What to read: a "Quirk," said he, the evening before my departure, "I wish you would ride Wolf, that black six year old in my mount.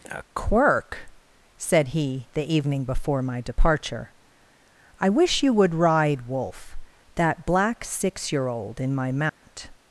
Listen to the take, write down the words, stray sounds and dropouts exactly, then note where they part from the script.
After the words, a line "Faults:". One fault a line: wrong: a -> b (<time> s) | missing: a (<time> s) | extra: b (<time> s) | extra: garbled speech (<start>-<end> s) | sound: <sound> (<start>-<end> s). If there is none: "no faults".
a "Quirk," said he, the evening before my departure, "I wish you would ride Wolf, that black six year old in my mount.
Faults:
sound: dropout (9.3-9.4 s)